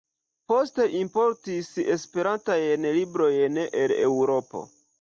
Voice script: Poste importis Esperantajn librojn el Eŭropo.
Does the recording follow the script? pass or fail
pass